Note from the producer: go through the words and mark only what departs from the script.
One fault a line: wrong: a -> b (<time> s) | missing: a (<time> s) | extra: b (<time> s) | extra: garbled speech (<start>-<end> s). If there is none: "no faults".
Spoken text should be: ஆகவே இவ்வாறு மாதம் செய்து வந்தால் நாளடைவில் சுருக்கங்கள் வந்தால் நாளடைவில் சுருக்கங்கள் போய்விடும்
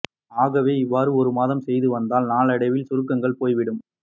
extra: ஒரு (1.1 s)
missing: வந்தால் நாளடைவில் சுருக்கங்கள் (3.4 s)